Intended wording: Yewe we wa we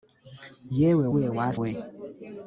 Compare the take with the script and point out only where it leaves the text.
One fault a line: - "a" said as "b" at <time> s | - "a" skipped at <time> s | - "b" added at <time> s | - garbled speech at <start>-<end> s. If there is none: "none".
none